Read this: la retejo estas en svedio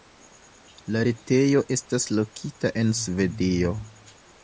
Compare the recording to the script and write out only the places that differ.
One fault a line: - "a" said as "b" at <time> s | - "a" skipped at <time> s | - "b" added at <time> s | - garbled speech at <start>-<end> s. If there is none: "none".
- "lokita" added at 2.2 s